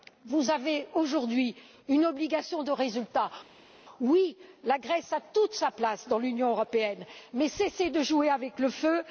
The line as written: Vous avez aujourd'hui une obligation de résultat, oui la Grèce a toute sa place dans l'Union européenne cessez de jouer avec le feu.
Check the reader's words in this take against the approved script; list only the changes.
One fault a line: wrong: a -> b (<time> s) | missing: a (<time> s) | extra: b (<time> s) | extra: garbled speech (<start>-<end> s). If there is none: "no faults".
extra: mais (7.3 s)